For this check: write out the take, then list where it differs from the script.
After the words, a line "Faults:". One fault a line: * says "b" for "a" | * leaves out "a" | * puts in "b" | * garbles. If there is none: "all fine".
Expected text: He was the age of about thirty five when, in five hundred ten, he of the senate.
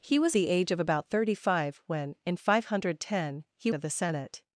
He was the age of about thirty five when, in five hundred ten, he of the senate.
Faults:
all fine